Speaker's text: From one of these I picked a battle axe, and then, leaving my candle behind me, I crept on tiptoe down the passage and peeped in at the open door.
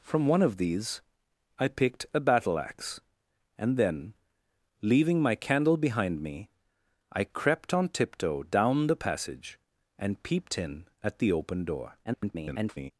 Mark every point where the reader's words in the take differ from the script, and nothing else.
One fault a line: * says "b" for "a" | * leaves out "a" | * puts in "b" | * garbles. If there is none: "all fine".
* garbles